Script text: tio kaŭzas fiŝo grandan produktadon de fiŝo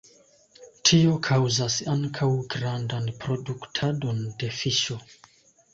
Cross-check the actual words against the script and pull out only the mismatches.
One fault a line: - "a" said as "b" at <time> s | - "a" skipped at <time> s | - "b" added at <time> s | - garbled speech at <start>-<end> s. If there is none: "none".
- "fiŝo" said as "ankaŭ" at 2.0 s